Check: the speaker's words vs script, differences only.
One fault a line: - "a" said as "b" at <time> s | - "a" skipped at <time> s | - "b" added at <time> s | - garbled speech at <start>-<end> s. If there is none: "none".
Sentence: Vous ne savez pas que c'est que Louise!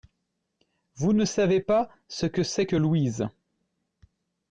- "ce" added at 2.1 s